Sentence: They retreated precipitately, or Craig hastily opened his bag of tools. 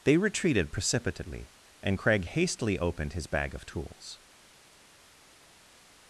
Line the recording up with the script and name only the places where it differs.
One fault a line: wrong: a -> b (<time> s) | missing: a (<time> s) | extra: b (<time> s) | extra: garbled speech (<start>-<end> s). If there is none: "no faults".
wrong: or -> and (1.8 s)